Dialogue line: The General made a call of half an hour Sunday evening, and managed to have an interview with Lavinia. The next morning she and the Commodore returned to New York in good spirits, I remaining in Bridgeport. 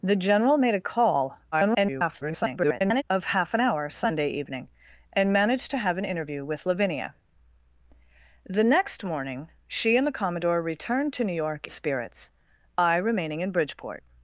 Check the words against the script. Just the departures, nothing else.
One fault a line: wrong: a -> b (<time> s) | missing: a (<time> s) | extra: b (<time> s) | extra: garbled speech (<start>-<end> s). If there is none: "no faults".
extra: garbled speech (1.5-3.0 s)
missing: in good (11.7 s)